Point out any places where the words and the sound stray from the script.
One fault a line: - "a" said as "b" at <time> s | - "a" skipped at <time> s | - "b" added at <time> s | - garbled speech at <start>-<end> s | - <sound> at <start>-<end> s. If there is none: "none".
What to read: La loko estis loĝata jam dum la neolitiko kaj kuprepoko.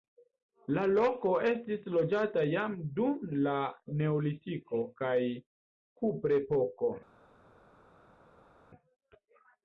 none